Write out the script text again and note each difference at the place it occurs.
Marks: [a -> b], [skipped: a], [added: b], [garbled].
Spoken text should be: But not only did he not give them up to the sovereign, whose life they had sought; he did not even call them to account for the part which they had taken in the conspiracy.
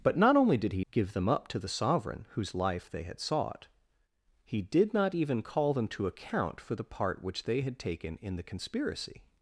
But not only did he [skipped: not] give them up to the sovereign, whose life they had sought; he did not even call them to account for the part which they had taken in the conspiracy.